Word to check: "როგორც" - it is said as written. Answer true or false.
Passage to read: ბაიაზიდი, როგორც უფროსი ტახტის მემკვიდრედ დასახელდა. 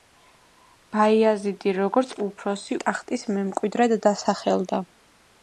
true